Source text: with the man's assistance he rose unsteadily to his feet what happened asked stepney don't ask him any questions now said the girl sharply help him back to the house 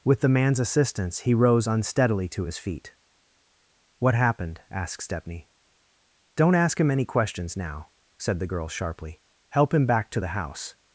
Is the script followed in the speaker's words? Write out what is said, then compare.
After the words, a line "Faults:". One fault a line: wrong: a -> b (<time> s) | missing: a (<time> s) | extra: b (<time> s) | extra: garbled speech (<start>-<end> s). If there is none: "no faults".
with the man's assistance he rose unsteadily to his feet what happened asked stepney don't ask him any questions now said the girl sharply help him back to the house
Faults:
no faults